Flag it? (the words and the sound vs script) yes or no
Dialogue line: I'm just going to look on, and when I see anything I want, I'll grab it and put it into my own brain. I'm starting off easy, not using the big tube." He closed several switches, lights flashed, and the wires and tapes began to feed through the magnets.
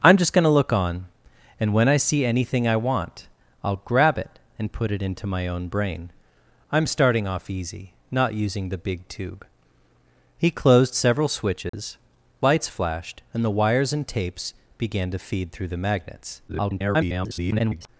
yes